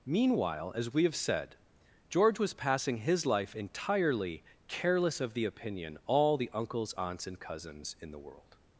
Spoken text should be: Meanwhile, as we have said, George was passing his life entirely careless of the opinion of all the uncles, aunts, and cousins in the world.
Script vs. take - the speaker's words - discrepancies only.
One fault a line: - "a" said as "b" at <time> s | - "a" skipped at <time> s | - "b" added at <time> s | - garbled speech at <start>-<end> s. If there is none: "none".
- "of" skipped at 6.0 s